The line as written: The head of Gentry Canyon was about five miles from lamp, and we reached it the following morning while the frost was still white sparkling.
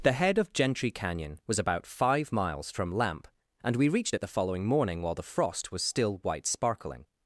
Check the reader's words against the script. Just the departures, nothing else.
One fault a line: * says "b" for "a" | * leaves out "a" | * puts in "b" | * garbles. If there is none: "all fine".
all fine